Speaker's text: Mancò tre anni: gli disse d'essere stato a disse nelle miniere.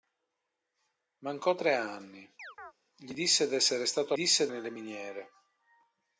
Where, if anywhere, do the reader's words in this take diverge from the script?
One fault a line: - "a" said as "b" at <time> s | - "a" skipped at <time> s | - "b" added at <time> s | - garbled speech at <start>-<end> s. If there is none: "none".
none